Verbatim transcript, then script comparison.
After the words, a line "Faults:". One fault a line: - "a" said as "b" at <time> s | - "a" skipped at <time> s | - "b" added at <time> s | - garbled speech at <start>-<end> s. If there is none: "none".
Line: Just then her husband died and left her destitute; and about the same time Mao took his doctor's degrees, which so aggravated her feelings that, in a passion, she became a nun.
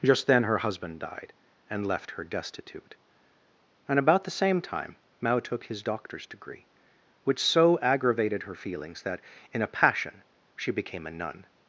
Just then her husband died and left her destitute; and about the same time Mao took his doctor's degree, which so aggravated her feelings that, in a passion, she became a nun.
Faults:
- "degrees" said as "degree" at 6.3 s